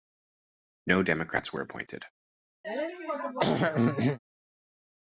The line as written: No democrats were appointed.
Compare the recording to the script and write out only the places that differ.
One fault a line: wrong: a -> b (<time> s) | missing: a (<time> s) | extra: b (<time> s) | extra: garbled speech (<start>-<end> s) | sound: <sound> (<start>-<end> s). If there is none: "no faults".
sound: throat clearing (2.6-4.2 s)